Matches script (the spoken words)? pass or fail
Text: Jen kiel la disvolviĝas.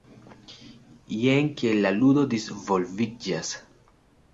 fail